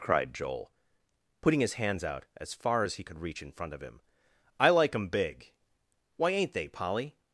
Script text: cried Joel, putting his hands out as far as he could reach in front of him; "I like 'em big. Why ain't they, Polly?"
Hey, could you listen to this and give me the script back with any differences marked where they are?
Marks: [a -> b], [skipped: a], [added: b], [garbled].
cried Joel, putting his hands out as far as he could reach in front of him; "I like 'em big. Why ain't they, Polly?"